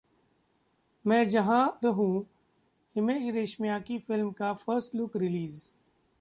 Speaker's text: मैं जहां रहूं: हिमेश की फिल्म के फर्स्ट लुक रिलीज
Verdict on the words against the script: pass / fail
fail